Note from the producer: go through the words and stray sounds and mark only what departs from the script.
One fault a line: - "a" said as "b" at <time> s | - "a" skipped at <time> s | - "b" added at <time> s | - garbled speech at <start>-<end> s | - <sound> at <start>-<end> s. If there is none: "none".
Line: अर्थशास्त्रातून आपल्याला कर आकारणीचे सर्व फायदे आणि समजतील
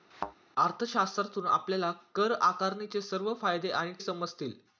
- thud at 0.1-0.4 s